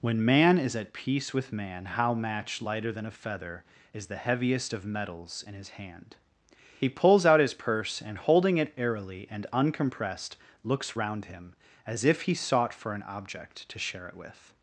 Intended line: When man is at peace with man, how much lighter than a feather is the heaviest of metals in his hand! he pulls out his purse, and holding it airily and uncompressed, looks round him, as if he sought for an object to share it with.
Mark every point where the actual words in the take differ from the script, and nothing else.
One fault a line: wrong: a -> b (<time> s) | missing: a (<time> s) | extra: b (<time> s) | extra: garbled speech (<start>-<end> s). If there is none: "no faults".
wrong: much -> match (2.1 s)